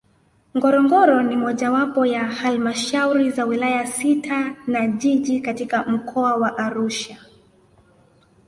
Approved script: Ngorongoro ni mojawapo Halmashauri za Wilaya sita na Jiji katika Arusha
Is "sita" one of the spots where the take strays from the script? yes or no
no